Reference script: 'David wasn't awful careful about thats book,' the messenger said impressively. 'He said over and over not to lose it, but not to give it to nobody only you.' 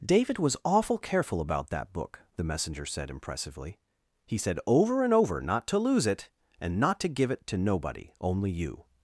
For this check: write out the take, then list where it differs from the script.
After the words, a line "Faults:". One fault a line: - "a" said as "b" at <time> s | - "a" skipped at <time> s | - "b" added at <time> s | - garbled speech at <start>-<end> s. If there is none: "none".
'David was awful careful about that book,' the messenger said impressively. 'He said over and over not to lose it, and not to give it to nobody only you.'
Faults:
- "wasn't" said as "was" at 0.4 s
- "thats" said as "that" at 1.7 s
- "but" said as "and" at 6.6 s